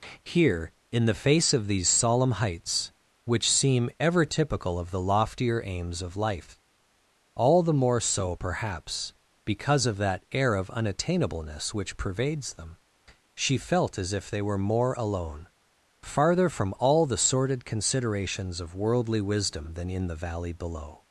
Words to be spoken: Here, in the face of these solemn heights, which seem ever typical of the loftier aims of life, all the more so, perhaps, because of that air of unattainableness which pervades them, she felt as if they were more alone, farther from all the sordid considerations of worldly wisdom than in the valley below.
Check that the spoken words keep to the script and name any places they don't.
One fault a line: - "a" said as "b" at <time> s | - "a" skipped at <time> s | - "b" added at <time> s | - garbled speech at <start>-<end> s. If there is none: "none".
none